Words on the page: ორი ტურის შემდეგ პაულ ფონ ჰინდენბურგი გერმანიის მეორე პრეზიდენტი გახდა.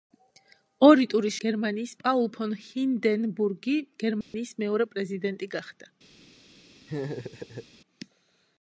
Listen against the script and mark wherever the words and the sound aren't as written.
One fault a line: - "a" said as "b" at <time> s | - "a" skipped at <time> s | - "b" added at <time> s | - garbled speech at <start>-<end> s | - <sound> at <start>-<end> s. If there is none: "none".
- "შემდეგ" said as "გერმანიის" at 1.5 s
- dropout at 4.2-4.3 s
- laugh at 6.9-7.7 s